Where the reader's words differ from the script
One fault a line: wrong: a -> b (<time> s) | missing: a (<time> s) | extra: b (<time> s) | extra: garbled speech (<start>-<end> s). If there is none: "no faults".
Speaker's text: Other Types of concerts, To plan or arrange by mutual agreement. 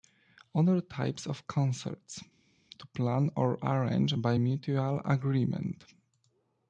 no faults